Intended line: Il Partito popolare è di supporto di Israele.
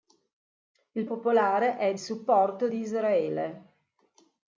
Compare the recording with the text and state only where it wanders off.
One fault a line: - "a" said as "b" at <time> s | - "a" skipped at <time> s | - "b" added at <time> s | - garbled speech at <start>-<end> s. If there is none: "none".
- "Partito" skipped at 1.1 s
- "di" skipped at 2.0 s